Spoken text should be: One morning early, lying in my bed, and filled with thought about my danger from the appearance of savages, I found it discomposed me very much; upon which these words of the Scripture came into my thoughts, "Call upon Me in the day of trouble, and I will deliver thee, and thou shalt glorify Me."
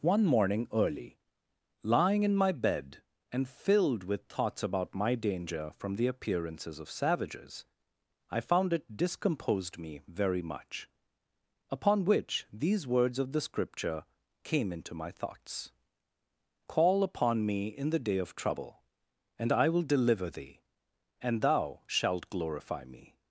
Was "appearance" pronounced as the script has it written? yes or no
no